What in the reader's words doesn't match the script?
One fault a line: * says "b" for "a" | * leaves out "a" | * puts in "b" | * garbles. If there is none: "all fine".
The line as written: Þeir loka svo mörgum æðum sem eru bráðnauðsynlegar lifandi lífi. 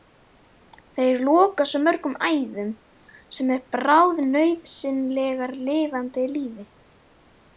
all fine